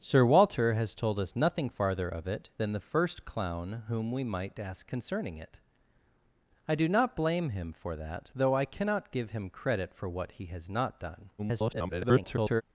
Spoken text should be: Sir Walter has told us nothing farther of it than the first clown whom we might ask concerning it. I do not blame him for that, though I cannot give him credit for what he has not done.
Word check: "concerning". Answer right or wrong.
right